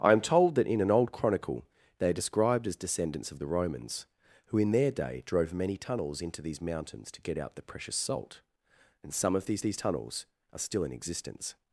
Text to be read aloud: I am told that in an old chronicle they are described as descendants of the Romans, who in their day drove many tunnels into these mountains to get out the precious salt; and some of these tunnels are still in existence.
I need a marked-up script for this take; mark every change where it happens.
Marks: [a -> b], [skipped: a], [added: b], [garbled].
I am told that in an old chronicle they are described as descendants of the Romans, who in their day drove many tunnels into these mountains to get out the precious salt; and some of these [added: these] tunnels are still in existence.